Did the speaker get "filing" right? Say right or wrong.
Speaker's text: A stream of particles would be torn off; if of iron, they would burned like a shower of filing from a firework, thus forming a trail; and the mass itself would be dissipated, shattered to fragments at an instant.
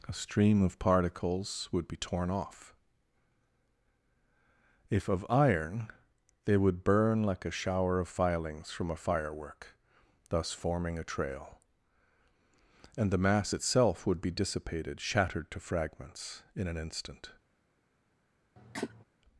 wrong